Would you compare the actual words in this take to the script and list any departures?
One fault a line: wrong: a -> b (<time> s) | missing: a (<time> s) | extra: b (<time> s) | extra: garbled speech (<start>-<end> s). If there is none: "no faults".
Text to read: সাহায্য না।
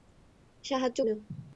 no faults